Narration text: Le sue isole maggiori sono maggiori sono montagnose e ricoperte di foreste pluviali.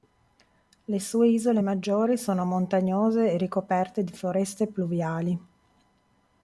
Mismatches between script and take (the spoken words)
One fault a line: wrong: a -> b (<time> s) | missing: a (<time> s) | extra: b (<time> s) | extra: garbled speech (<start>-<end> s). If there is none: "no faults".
missing: maggiori sono (2.5 s)